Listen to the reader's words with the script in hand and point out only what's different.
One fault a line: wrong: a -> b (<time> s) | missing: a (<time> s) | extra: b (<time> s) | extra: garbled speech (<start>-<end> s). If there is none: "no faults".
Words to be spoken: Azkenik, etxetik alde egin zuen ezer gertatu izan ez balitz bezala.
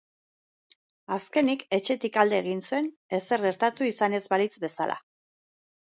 no faults